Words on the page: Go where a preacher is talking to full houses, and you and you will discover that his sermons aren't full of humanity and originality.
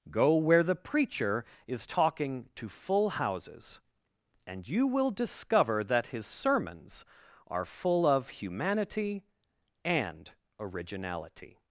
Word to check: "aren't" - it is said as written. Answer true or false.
false